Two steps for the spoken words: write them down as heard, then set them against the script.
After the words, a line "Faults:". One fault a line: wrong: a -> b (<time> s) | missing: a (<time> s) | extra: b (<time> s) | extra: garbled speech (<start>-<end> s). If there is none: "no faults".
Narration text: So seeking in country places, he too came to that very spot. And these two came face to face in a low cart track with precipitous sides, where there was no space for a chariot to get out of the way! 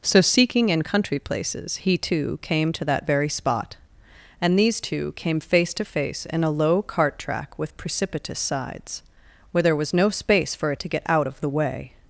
So seeking in country places, he too came to that very spot. And these two came face to face in a low cart track with precipitous sides, where there was no space for a to get out of the way!
Faults:
missing: chariot (10.8 s)